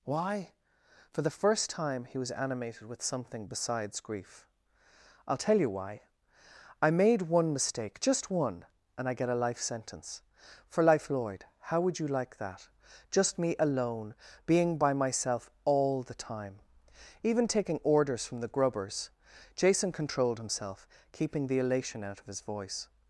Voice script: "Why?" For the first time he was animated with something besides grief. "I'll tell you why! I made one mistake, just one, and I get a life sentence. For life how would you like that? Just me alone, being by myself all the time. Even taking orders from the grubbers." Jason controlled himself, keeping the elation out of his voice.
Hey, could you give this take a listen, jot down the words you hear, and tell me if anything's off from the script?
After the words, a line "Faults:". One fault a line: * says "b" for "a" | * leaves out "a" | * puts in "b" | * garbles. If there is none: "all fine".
"Why?" For the first time he was animated with something besides grief. "I'll tell you why! I made one mistake, just one, and I get a life sentence. For life lloyd how would you like that? Just me alone, being by myself all the time. Even taking orders from the grubbers." Jason controlled himself, keeping the elation out of his voice.
Faults:
* puts in "lloyd"